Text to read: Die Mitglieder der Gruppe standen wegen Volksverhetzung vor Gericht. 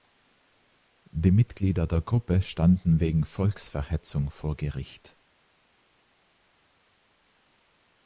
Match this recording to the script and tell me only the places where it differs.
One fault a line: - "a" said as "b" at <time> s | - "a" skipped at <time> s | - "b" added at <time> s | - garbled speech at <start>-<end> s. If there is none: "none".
none